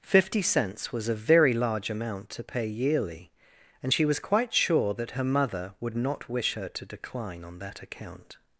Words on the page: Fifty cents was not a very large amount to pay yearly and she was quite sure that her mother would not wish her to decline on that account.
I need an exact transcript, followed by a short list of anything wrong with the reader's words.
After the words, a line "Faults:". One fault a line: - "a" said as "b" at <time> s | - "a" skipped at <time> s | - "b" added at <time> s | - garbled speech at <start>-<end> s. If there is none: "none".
Fifty cents was a very large amount to pay yearly and she was quite sure that her mother would not wish her to decline on that account.
Faults:
- "not" skipped at 1.1 s